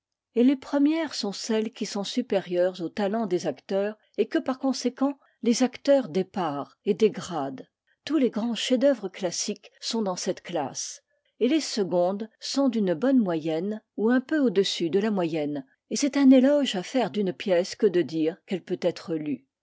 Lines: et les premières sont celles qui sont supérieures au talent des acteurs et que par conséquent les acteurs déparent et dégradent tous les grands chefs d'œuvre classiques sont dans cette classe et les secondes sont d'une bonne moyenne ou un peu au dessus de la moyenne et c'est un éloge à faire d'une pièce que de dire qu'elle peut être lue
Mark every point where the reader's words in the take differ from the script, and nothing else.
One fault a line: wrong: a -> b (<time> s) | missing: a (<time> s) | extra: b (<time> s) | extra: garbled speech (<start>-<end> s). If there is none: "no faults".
no faults